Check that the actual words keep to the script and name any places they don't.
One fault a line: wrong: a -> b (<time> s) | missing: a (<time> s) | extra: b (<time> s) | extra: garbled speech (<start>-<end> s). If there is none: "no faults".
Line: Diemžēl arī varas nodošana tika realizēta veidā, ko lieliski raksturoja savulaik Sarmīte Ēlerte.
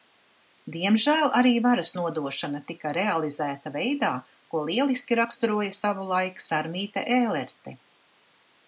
no faults